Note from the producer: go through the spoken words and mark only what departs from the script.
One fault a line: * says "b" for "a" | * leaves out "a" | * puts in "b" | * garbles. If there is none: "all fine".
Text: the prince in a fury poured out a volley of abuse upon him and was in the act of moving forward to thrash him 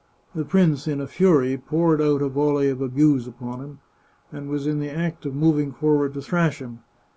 all fine